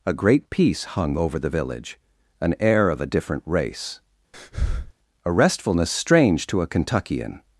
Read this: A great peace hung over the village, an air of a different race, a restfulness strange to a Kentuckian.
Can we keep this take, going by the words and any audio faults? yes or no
no